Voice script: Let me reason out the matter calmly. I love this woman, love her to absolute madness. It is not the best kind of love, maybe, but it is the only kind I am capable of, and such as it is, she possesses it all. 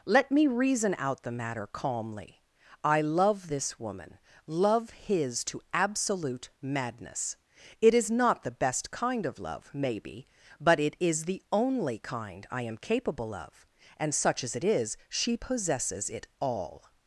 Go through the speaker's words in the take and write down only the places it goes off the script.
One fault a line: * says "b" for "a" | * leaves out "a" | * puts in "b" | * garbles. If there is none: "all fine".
* says "his" for "her"